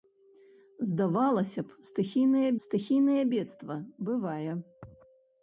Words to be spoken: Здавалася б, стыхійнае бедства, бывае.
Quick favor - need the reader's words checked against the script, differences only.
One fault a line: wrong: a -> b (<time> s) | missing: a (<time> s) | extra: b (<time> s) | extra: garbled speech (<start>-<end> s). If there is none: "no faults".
extra: стыхійнае (2.6 s)